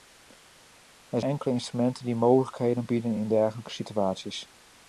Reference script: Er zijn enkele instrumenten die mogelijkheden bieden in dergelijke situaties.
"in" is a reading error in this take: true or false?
false